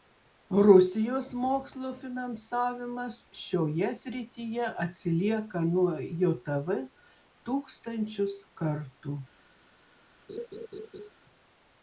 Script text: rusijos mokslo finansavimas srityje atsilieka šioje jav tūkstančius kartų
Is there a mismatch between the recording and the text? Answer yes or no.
yes